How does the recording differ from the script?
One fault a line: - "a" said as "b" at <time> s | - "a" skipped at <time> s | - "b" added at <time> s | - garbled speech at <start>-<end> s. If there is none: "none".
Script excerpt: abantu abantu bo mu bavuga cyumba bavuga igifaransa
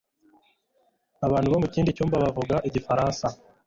- "abantu" skipped at 1.5 s
- "bavuga" said as "kindi" at 1.7 s